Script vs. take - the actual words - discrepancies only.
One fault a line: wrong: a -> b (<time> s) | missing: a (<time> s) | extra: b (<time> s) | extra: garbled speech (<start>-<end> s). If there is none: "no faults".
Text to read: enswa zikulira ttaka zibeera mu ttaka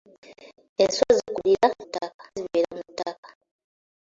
no faults